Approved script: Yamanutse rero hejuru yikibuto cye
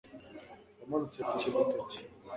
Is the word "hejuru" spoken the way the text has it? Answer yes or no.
no